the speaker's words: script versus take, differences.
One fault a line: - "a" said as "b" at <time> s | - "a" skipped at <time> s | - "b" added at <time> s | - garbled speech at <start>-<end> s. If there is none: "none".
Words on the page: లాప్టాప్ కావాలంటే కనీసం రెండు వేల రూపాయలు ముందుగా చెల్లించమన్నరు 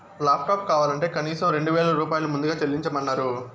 none